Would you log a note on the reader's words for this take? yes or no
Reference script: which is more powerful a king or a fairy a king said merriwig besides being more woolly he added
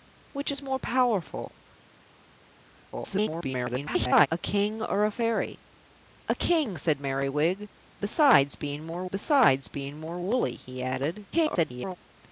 yes